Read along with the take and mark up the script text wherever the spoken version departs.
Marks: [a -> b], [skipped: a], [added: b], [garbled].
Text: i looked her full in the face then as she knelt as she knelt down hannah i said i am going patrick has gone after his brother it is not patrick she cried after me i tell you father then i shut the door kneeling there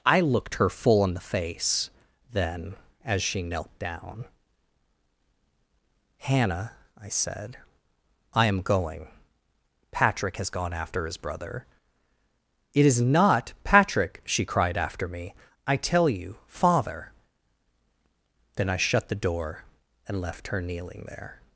i looked her full in the face then as she knelt [skipped: as she knelt] down hannah i said i am going patrick has gone after his brother it is not patrick she cried after me i tell you father then i shut the door [added: and left her] kneeling there